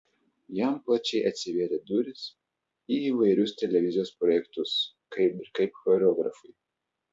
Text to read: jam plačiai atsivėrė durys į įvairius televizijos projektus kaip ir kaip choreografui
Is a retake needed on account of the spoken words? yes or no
no